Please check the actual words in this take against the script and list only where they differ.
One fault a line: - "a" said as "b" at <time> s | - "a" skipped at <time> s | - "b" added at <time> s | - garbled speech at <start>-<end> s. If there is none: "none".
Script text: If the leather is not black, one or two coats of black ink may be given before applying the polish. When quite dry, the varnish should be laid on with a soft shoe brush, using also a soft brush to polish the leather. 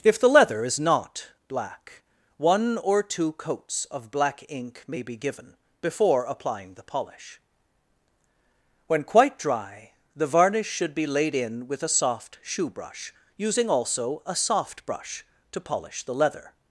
- "on" said as "in" at 11.3 s